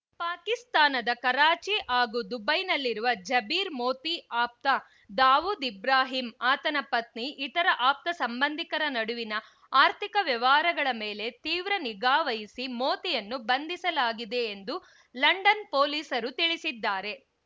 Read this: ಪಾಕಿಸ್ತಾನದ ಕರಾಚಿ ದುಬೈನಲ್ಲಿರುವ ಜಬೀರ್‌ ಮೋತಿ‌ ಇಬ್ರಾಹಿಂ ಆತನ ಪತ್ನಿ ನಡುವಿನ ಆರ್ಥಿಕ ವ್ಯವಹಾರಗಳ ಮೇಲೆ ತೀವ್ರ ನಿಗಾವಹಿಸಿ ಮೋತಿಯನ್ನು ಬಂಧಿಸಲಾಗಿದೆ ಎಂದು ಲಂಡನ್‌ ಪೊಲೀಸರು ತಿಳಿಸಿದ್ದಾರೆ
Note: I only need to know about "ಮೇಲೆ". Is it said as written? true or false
true